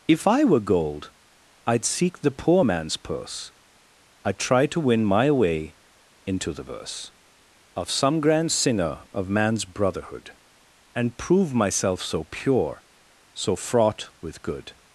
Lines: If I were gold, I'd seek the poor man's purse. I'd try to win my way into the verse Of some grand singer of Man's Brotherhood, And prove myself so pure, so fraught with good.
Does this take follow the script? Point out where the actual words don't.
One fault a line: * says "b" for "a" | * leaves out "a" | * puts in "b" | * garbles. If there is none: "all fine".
all fine